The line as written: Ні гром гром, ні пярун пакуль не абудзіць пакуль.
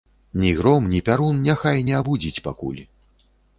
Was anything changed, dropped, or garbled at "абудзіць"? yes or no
no